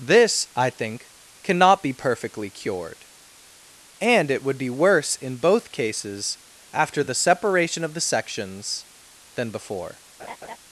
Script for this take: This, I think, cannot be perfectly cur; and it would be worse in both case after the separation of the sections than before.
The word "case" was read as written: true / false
false